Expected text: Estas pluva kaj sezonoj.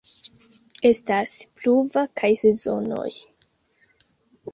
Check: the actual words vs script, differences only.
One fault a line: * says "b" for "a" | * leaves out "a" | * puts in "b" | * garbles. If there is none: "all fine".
all fine